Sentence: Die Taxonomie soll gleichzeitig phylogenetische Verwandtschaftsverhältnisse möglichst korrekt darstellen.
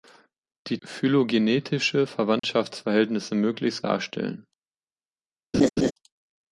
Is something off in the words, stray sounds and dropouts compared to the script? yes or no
yes